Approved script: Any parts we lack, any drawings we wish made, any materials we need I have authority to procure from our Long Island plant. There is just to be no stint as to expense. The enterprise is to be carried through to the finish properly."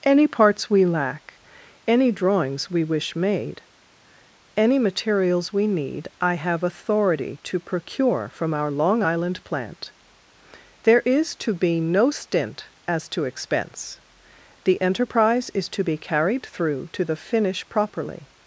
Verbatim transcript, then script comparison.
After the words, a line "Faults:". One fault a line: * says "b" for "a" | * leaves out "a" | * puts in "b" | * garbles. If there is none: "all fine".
Any parts we lack, any drawings we wish made, any materials we need I have authority to procure from our Long Island plant. There is to be no stint as to expense. The enterprise is to be carried through to the finish properly."
Faults:
* leaves out "just"